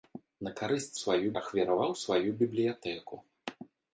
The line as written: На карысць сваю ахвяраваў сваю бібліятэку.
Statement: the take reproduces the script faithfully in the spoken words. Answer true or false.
true